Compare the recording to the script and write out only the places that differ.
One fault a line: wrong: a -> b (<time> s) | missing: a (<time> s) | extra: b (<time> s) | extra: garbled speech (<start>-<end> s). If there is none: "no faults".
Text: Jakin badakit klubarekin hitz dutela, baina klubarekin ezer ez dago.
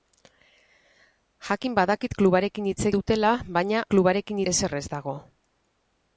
no faults